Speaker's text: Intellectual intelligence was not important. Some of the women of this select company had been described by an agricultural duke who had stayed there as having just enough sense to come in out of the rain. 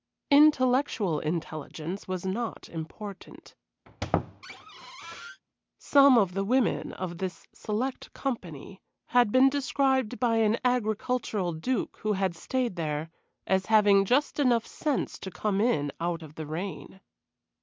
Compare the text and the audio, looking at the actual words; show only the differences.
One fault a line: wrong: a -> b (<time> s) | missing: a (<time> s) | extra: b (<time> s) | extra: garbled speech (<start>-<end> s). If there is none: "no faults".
no faults